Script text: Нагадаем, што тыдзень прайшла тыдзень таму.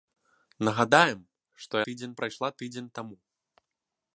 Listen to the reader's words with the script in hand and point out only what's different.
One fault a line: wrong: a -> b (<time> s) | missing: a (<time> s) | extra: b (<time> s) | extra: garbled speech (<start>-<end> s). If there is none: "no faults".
no faults